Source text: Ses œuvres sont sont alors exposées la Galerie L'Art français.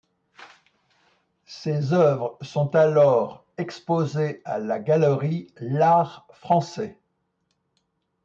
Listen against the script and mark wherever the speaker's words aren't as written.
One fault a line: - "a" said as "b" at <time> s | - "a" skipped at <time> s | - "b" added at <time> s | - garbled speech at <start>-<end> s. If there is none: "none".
- "sont" skipped at 2.8 s
- "à" added at 4.5 s